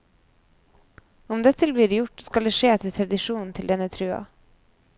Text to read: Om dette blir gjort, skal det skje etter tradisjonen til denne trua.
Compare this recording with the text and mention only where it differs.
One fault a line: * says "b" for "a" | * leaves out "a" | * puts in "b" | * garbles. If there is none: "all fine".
all fine